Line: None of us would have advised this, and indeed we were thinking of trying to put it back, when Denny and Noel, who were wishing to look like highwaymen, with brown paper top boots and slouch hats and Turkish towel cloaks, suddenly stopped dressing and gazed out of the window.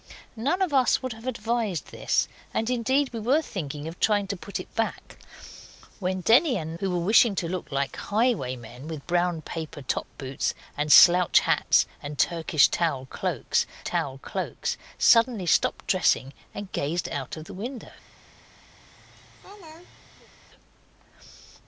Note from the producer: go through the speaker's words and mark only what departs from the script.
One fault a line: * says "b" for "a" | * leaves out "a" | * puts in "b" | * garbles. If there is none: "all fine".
* leaves out "Noel"
* puts in "towel cloaks"